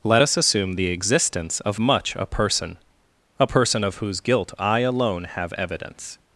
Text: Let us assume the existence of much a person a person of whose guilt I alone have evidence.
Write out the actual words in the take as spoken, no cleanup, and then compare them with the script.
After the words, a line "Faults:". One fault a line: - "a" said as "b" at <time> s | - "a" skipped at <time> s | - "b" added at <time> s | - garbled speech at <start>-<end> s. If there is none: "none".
Let us assume the existence of much a person a person of whose guilt I alone have evidence.
Faults:
none